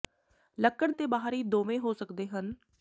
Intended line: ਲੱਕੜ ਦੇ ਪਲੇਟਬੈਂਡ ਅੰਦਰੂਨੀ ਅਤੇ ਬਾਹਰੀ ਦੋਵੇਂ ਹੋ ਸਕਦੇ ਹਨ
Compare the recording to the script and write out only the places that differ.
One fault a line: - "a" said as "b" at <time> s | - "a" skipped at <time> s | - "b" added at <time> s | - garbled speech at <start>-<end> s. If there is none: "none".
- "ਦੇ ਪਲੇਟਬੈਂਡ ਅੰਦਰੂਨੀ" skipped at 0.9 s